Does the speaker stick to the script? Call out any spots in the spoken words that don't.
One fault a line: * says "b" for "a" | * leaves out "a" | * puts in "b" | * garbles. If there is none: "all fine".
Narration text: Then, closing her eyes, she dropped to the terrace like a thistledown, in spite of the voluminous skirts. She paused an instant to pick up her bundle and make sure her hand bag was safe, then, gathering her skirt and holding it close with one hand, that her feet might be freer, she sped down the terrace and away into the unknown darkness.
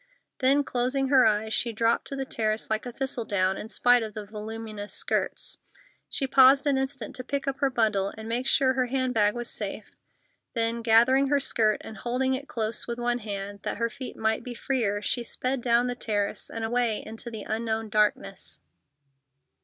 all fine